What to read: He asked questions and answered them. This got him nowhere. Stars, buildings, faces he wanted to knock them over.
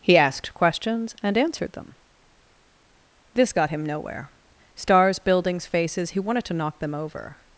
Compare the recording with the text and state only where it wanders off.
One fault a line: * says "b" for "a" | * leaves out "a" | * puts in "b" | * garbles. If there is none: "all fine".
all fine